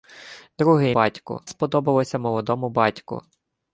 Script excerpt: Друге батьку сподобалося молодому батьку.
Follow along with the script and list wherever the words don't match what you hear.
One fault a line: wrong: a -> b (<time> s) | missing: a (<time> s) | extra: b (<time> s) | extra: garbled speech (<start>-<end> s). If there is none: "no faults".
no faults